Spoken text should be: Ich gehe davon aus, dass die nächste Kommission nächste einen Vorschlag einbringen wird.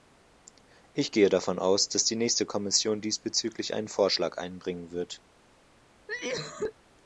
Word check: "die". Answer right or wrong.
right